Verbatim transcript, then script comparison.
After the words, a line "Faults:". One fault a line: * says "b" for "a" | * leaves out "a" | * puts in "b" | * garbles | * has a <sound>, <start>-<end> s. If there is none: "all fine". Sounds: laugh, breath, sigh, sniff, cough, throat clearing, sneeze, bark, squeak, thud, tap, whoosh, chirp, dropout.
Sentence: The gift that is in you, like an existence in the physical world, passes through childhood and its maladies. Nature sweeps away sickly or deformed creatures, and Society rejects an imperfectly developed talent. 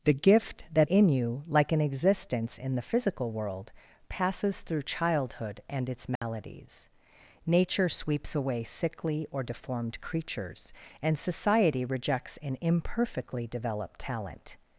The gift that in you, like an existence in the physical world, passes through childhood and its maladies. Nature sweeps away sickly or deformed creatures, and Society rejects an imperfectly developed talent.
Faults:
* leaves out "is"
* has a dropout, 6.2-6.2 s